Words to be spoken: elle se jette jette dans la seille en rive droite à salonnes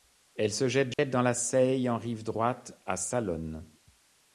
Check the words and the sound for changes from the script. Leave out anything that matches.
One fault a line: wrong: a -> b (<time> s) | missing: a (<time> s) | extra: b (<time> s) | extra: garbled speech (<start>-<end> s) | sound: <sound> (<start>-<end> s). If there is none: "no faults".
sound: dropout (0.9-1.0 s)